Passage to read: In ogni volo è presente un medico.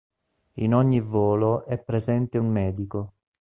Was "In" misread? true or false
false